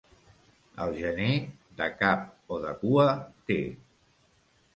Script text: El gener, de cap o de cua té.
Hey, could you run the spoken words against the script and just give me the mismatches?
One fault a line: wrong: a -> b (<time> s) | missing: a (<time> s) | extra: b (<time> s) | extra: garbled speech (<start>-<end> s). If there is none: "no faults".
no faults